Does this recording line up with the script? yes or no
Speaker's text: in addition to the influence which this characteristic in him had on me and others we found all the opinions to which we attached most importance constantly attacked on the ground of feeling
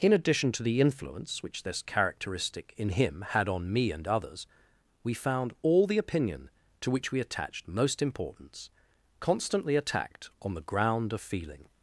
no